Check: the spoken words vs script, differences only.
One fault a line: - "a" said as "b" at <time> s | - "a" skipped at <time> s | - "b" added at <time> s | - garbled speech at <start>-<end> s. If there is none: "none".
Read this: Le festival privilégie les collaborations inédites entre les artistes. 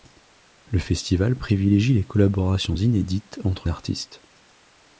- "les" skipped at 3.7 s